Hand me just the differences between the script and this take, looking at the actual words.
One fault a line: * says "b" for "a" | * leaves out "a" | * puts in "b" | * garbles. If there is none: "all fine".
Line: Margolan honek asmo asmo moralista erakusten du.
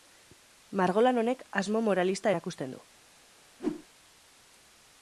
* leaves out "asmo"